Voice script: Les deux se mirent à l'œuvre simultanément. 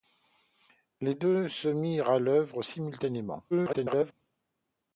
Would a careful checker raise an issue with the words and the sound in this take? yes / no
yes